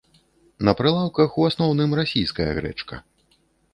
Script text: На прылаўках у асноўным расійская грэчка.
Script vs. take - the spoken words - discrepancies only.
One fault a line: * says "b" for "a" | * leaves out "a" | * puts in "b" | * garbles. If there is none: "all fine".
all fine